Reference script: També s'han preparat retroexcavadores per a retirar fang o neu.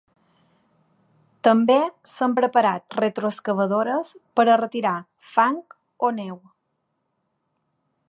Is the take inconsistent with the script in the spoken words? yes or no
no